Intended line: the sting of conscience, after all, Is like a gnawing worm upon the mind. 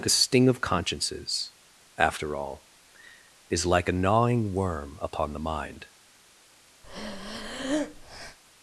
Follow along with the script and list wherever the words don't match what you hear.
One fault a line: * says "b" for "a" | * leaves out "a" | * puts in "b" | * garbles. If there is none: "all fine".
* says "consciences" for "conscience"